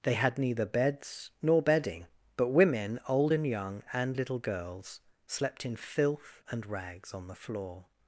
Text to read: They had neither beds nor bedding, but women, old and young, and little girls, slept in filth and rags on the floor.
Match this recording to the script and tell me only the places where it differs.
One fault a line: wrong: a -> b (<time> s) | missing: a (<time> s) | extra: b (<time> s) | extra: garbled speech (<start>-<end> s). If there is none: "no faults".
no faults